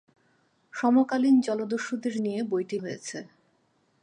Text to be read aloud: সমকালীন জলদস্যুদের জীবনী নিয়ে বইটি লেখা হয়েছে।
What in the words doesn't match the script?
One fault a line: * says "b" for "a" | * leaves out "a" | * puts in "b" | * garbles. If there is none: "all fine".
* leaves out "জীবনী"
* leaves out "লেখা"